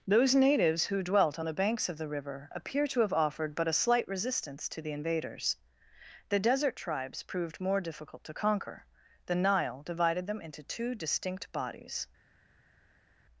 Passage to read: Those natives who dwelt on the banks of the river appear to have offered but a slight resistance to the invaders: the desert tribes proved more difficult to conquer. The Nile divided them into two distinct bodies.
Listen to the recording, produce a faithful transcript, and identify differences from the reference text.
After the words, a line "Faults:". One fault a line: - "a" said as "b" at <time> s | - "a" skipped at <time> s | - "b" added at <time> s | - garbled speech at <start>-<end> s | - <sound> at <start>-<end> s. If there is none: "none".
Those natives who dwelt on the banks of the river appear to have offered but a slight resistance to the invaders: the desert tribes proved more difficult to conquer. The Nile divided them into two distinct bodies.
Faults:
none